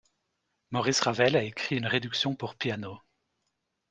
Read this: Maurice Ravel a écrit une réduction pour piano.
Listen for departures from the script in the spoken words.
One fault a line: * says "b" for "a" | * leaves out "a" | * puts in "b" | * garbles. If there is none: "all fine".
all fine